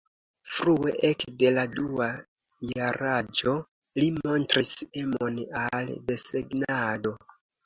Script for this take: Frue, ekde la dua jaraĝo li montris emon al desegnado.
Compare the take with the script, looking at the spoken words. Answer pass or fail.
pass